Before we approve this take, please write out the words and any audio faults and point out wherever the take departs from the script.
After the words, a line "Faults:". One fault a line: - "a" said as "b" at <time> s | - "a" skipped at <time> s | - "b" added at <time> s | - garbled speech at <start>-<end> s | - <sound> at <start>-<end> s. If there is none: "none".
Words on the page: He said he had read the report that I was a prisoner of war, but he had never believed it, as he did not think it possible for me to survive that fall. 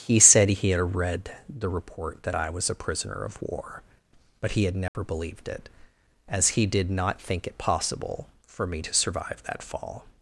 He said he had read the report that I was a prisoner of war, but he had never believed it, as he did not think it possible for me to survive that fall.
Faults:
- dropout at 4.9-4.9 s